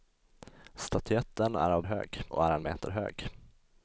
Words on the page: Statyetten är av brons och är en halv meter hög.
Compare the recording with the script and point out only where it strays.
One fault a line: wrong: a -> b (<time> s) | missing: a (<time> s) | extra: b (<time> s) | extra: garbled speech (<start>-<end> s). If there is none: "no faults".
wrong: brons -> hög (1.8 s)
missing: halv (2.6 s)